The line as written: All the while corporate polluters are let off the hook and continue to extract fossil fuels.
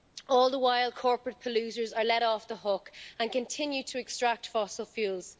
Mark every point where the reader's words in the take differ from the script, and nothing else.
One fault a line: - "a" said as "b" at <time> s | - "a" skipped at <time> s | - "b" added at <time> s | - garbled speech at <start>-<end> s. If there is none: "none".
none